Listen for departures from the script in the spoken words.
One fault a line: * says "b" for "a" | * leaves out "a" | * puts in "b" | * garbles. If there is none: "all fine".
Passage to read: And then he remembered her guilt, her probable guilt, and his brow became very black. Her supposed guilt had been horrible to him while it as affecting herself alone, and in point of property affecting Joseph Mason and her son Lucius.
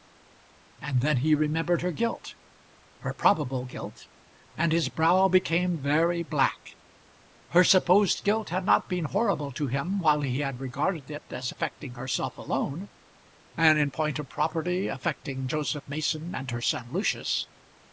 * puts in "not"
* puts in "he had regarded"